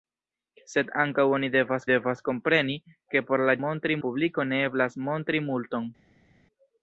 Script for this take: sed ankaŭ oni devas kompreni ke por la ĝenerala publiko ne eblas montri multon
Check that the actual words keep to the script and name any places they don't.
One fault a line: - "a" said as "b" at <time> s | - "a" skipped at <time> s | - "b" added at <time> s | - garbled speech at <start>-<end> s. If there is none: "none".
- "devas" added at 1.9 s
- "ĝenerala" said as "montri" at 3.6 s